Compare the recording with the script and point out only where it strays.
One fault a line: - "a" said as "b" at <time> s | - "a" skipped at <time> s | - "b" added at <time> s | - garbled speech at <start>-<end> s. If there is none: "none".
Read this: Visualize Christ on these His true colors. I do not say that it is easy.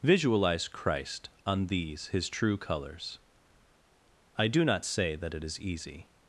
none